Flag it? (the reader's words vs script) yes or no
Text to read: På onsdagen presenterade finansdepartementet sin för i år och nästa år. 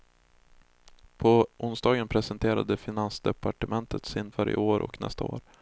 no